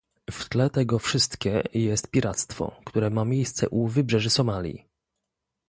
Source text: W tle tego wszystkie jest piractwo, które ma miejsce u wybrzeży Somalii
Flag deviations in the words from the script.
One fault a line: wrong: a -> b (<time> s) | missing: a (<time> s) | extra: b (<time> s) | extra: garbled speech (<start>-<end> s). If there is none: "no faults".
no faults